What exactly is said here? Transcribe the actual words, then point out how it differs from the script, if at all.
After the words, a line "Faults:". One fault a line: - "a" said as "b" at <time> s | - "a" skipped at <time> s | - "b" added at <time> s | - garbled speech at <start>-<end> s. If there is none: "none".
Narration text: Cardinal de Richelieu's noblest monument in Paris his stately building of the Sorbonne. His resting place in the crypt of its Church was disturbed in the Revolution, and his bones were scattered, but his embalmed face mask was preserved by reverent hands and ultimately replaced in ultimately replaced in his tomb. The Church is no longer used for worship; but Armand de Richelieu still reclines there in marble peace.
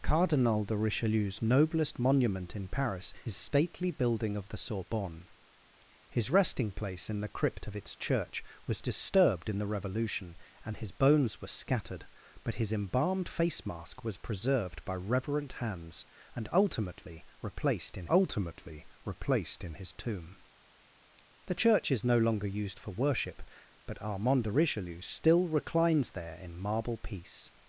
Cardinal de Richelieu's noblest monument in Paris his stately building of the Sorbonne. His resting place in the crypt of its Church was disturbed in the Revolution, and his bones were scattered, but his embalmed face mask was preserved by reverent hands and ultimately replaced in ultimately replaced in his tomb. The Church is no longer used for worship; but Armand de Richelieu still reclines there in marble peace.
Faults:
none